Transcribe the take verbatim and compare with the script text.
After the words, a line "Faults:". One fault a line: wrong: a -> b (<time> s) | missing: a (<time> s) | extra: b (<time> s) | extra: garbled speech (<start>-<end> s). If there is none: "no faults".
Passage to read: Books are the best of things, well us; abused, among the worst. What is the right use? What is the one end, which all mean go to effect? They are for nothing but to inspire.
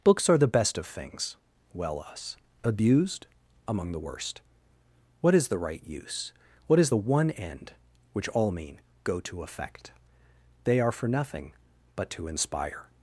Books are the best of things, well us; abused, among the worst. What is the right use? What is the one end, which all mean go to effect? They are for nothing but to inspire.
Faults:
no faults